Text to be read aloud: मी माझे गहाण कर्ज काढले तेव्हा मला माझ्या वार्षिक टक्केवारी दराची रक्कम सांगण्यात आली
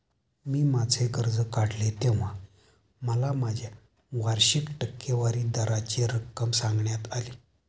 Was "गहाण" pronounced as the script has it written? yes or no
no